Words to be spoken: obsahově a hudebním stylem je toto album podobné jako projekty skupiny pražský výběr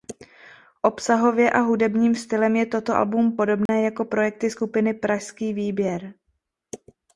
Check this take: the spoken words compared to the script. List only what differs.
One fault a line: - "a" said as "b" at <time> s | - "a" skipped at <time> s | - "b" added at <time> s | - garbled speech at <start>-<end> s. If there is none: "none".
none